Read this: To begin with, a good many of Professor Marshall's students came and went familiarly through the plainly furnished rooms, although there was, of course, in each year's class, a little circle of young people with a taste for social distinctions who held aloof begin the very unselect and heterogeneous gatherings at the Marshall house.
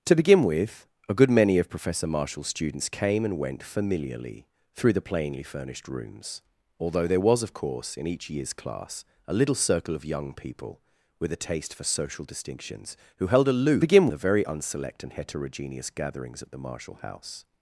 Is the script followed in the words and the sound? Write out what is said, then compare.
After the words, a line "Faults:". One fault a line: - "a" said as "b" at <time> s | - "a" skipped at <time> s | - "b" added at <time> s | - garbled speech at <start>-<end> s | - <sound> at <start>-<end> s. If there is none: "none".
To begin with, a good many of Professor Marshall's students came and went familiarly through the plainly furnished rooms, although there was, of course, in each year's class, a little circle of young people with a taste for social distinctions who held aloof begin the very unselect and heterogeneous gatherings at the Marshall house.
Faults:
none